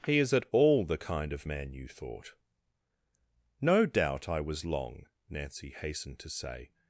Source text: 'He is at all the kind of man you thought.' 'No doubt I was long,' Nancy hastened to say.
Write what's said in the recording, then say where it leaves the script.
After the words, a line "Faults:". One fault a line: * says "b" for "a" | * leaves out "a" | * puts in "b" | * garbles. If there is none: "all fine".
'He is at all the kind of man you thought.' 'No doubt I was long,' Nancy hastened to say.
Faults:
all fine